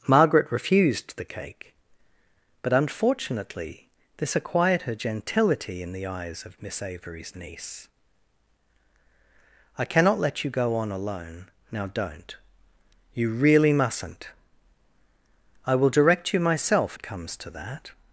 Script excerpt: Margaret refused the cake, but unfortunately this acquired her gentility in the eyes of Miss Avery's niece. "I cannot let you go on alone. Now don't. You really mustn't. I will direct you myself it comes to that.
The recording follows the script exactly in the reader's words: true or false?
true